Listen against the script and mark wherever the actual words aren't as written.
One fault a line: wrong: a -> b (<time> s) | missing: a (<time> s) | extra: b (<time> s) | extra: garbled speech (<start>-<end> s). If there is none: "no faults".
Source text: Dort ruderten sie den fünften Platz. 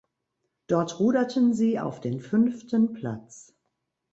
extra: auf (1.8 s)